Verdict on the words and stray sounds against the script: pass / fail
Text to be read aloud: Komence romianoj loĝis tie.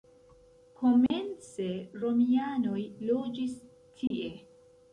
fail